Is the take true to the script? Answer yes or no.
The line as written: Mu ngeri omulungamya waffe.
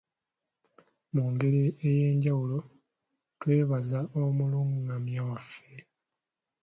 no